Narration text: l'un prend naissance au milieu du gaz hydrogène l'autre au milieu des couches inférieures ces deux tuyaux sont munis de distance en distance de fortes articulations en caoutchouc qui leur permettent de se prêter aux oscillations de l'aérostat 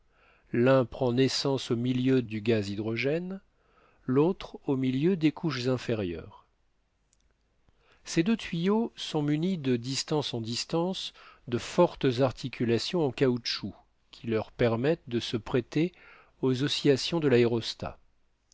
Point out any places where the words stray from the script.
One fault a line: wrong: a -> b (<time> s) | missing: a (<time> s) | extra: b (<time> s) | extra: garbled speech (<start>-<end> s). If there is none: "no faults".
no faults